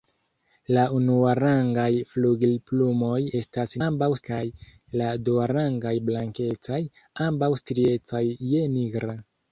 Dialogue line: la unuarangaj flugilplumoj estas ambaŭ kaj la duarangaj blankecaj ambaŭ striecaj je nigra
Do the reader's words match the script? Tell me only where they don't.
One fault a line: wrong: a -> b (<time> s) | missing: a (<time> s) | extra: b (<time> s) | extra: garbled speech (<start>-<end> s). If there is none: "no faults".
no faults